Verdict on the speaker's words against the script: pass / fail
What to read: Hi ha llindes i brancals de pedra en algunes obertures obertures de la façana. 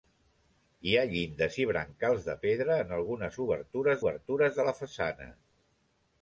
pass